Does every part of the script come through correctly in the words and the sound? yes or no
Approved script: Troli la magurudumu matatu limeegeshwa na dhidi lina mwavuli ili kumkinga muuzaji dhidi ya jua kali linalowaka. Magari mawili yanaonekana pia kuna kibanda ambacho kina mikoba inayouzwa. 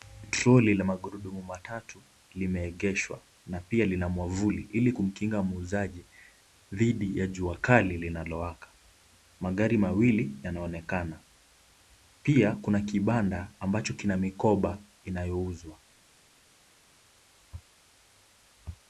no